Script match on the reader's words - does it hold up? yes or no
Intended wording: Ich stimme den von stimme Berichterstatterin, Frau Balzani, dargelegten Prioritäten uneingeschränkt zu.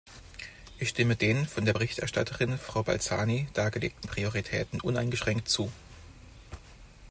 no